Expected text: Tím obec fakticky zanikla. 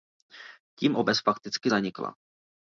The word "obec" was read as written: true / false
true